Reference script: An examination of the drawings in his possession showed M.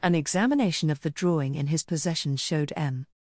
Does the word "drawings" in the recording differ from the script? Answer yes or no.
yes